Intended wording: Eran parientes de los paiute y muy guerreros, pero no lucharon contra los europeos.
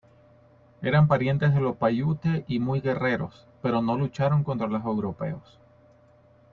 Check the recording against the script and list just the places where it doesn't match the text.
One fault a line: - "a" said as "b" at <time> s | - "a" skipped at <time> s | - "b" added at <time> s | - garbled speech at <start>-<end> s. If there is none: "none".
none